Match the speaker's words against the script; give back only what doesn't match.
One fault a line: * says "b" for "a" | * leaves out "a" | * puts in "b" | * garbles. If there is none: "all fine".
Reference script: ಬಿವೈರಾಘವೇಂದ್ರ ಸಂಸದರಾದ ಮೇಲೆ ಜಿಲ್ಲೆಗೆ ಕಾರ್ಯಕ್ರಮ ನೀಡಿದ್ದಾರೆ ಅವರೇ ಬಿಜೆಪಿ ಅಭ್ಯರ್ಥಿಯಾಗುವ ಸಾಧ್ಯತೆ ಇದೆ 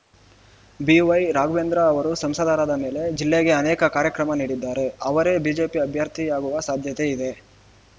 * puts in "ಅವರು"
* puts in "ಅನೇಕ"